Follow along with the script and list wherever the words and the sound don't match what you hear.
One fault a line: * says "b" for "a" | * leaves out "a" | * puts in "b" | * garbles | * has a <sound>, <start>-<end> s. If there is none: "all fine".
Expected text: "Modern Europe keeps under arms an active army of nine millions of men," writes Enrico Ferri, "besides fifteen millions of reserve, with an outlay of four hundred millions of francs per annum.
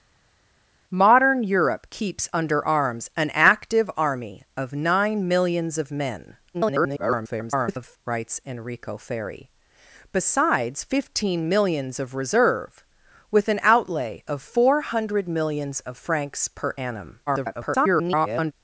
* garbles
* garbles